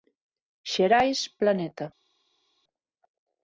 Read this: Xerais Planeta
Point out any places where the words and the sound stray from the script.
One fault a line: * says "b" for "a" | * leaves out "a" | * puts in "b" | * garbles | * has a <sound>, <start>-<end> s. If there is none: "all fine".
all fine